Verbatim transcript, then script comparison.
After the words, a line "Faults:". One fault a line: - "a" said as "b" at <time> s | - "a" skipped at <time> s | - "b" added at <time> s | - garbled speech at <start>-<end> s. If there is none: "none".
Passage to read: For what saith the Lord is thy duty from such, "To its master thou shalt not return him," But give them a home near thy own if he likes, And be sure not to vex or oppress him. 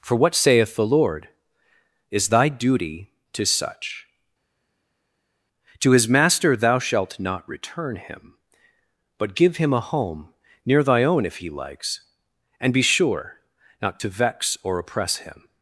For what saith the Lord is thy duty to such, "To his master thou shalt not return him," But give him a home near thy own if he likes, And be sure not to vex or oppress him.
Faults:
- "from" said as "to" at 3.3 s
- "its" said as "his" at 5.9 s
- "them" said as "him" at 9.6 s